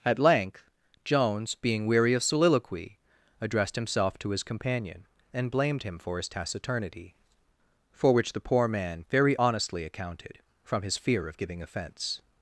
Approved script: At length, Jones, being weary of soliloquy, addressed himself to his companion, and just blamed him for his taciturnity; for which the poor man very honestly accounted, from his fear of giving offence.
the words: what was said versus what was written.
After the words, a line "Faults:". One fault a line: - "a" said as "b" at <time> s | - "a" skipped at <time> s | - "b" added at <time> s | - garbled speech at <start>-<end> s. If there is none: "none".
At length, Jones, being weary of soliloquy, addressed himself to his companion, and blamed him for his taciturnity; for which the poor man very honestly accounted, from his fear of giving offence.
Faults:
- "just" skipped at 5.5 s